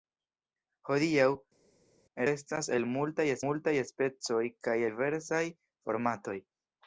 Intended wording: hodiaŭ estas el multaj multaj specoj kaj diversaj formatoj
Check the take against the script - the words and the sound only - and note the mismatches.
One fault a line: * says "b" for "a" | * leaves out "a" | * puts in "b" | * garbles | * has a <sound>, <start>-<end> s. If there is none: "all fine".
all fine